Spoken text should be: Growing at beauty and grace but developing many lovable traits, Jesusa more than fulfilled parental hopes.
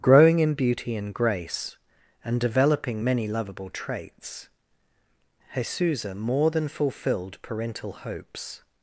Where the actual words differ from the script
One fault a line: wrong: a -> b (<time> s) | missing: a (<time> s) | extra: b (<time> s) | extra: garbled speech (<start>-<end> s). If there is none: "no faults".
wrong: at -> in (0.4 s)
wrong: but -> and (2.2 s)